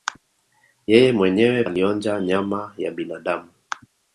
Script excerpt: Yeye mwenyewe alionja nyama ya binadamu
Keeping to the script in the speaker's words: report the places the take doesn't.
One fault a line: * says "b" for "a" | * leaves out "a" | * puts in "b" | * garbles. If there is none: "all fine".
all fine